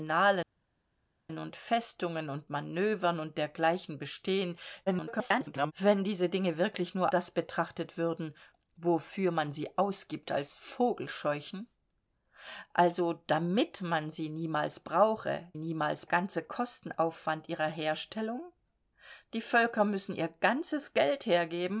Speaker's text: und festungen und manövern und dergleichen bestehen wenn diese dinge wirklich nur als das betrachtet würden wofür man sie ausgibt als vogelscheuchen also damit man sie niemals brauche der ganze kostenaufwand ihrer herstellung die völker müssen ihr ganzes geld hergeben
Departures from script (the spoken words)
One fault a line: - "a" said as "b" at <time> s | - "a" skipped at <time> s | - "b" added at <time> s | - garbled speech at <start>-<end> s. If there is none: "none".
- garbled speech at 4.9-5.7 s
- "als" skipped at 7.1 s
- "der" said as "niemals" at 15.5 s